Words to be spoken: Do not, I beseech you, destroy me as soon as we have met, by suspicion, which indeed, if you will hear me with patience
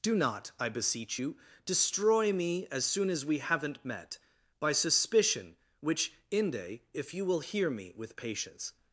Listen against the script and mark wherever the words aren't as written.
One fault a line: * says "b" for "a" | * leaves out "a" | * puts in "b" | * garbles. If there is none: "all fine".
* says "haven't" for "have"
* says "inde" for "indeed"